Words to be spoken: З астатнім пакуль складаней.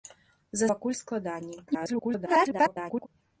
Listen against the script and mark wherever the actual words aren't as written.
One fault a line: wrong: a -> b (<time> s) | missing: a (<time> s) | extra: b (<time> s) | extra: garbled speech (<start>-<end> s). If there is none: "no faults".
missing: астатнім (0.7 s)
extra: garbled speech (1.7-3.1 s)